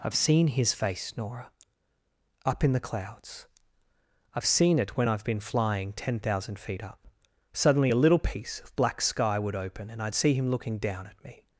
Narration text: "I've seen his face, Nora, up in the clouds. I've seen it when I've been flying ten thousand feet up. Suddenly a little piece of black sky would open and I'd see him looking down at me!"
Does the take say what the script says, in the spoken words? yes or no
yes